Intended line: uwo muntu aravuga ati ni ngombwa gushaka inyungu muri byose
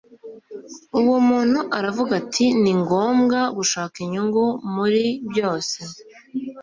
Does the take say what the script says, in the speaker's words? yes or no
yes